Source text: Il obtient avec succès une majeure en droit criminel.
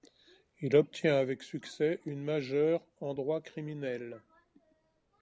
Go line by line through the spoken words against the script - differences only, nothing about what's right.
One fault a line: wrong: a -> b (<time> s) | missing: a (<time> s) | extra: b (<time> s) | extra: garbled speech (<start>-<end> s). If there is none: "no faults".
no faults